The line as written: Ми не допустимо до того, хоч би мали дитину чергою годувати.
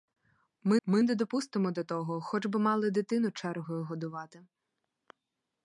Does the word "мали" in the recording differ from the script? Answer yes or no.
no